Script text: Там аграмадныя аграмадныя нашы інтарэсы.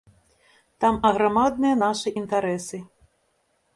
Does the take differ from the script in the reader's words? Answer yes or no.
yes